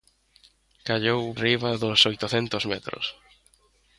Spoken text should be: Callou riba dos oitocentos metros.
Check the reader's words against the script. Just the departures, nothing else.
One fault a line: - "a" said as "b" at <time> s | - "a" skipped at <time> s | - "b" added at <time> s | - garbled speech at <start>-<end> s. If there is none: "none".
none